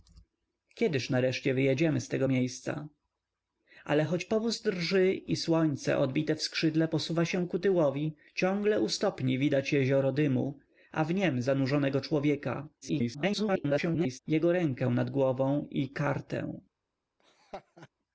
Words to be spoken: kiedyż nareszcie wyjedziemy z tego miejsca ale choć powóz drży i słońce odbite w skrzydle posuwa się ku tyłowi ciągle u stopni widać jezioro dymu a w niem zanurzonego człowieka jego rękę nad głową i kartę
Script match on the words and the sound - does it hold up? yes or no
no